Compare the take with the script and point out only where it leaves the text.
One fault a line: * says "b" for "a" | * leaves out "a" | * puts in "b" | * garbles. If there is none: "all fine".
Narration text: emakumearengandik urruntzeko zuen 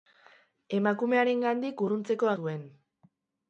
all fine